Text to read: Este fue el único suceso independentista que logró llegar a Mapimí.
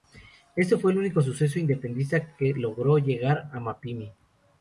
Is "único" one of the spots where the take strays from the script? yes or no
no